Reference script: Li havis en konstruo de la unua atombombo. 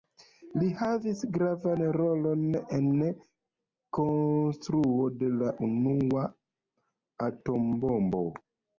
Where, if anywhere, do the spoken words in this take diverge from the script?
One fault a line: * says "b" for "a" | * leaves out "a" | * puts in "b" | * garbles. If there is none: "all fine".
* puts in "gravan rolon"